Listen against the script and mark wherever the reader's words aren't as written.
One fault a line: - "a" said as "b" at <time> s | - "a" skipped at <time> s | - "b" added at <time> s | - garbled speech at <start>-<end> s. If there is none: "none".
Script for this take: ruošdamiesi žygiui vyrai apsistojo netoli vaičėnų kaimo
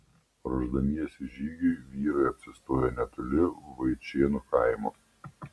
none